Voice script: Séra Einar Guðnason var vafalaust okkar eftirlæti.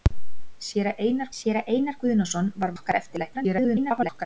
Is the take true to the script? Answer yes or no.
no